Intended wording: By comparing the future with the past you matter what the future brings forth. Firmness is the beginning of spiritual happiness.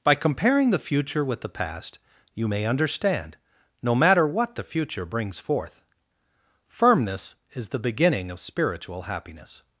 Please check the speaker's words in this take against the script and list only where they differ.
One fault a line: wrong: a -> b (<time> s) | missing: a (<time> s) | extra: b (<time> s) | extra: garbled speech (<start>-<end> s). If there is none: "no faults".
extra: may understand no (2.5 s)